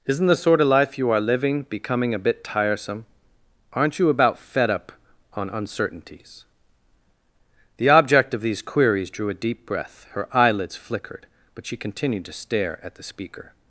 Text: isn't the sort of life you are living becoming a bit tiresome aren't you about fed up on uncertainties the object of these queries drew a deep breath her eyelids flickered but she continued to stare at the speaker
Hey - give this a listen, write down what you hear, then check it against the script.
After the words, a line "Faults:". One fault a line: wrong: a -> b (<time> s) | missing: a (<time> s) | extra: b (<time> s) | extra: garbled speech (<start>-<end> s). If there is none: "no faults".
isn't the sort of life you are living becoming a bit tiresome aren't you about fed up on uncertainties the object of these queries drew a deep breath her eyelids flickered but she continued to stare at the speaker
Faults:
no faults